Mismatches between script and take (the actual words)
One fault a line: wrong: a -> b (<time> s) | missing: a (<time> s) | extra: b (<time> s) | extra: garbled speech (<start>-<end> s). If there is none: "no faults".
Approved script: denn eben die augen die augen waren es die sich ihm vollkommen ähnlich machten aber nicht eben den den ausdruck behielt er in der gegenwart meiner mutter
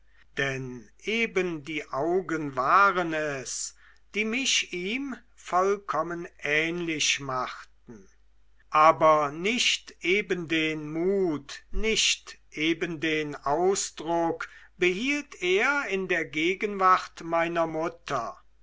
missing: die augen (2.5 s)
wrong: sich -> mich (4.2 s)
extra: mut nicht eben (10.9 s)